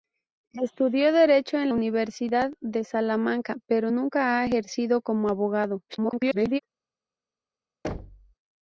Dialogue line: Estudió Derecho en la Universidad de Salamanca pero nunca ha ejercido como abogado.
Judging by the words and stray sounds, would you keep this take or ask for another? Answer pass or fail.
fail